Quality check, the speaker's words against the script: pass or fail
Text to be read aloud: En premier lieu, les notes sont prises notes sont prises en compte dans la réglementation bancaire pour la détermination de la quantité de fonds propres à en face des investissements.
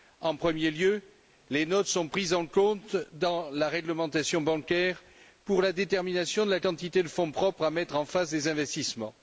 fail